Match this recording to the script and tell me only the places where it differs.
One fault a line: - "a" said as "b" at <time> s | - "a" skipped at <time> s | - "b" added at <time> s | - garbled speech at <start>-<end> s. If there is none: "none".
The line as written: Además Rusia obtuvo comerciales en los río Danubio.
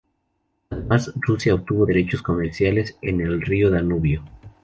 - "derechos" added at 1.8 s
- "los" said as "el" at 3.2 s